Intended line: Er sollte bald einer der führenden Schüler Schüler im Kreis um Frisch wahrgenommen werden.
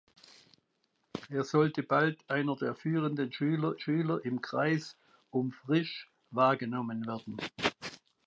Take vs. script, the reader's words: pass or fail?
pass